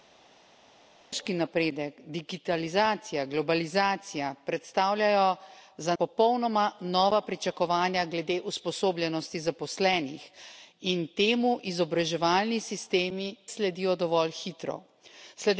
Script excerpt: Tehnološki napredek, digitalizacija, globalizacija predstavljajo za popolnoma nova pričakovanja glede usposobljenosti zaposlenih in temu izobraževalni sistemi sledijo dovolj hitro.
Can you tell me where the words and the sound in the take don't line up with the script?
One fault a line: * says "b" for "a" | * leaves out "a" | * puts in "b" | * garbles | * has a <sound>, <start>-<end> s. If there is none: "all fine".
all fine